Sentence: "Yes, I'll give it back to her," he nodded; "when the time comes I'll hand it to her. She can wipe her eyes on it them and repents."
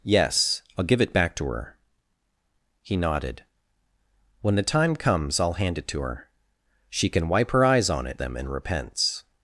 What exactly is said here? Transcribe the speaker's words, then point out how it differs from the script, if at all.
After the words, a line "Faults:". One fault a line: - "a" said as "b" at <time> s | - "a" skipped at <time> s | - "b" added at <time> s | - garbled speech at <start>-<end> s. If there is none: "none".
"Yes, I'll give it back to her," he nodded; "when the time comes I'll hand it to her. She can wipe her eyes on it them and repents."
Faults:
none